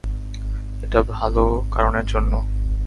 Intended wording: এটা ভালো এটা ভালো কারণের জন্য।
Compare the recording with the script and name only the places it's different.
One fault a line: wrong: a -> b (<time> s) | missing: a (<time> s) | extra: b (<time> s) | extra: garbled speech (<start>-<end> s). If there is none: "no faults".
missing: এটা ভালো (1.4 s)